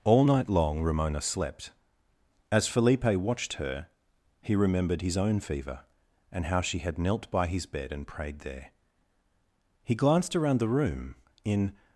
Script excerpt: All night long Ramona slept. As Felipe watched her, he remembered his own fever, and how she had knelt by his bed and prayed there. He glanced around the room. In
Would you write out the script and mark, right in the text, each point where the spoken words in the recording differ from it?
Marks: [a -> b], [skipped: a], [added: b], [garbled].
All night long Ramona slept. As Felipe watched her, he remembered his own fever, and how she had knelt by his bed and prayed there. He glanced around the room. In